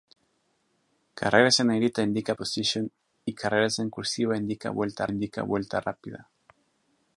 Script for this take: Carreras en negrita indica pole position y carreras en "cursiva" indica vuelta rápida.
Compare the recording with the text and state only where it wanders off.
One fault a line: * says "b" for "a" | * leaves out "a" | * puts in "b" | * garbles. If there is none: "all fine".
* leaves out "pole"
* puts in "indica vuelta"